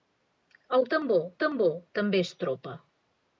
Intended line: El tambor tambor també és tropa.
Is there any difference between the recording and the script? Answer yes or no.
no